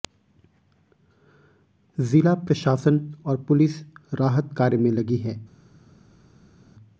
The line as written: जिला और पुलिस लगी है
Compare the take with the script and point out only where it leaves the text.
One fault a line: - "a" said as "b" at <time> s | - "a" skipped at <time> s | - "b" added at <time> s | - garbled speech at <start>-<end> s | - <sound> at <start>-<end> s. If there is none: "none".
- "प्रशासन" added at 2.4 s
- "राहत कार्य में" added at 4.1 s